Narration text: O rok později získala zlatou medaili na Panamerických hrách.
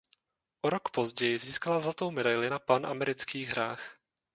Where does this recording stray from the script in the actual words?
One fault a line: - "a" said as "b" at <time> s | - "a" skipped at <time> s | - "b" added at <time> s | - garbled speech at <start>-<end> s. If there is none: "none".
none